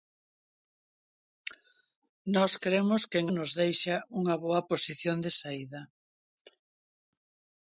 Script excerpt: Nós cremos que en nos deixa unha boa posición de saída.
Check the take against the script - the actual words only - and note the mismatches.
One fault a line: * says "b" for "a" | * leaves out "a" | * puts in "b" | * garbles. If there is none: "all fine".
all fine